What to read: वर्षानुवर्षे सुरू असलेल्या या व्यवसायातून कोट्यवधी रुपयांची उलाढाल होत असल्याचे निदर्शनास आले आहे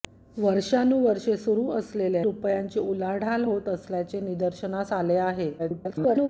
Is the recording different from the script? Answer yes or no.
yes